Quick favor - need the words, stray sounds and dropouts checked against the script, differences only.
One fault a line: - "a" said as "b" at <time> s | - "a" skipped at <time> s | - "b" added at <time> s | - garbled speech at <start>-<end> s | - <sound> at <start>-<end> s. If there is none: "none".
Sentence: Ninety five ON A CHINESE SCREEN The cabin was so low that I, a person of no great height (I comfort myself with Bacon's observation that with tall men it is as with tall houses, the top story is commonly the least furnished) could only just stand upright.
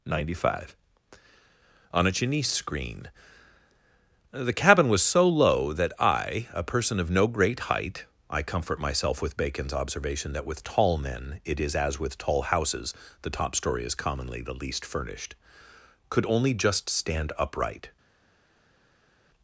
none